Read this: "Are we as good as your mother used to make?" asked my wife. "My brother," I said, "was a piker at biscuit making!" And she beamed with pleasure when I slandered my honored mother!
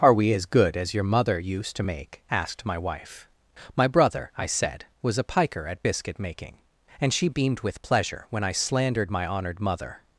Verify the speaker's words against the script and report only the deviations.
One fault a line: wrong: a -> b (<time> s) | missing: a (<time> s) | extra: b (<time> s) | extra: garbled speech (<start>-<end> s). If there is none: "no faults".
no faults